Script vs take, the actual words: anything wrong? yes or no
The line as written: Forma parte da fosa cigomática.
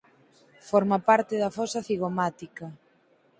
no